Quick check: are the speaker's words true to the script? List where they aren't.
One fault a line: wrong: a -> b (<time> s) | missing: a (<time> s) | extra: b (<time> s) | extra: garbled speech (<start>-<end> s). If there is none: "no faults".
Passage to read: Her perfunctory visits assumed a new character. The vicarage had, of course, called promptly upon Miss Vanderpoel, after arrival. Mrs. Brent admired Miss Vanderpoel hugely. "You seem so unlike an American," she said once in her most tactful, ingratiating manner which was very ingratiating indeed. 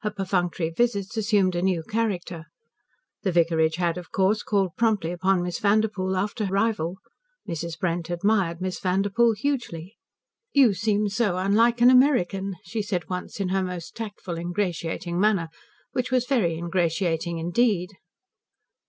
no faults